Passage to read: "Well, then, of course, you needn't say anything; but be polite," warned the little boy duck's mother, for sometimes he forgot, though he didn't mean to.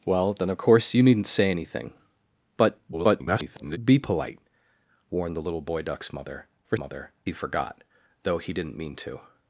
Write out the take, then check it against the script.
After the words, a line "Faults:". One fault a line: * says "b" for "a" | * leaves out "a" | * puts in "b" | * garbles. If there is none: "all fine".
"Well, then, of course, you needn't say anything; but [garbled] be polite," warned the little boy duck's mother, for mother he forgot, though he didn't mean to.
Faults:
* garbles
* says "mother" for "sometimes"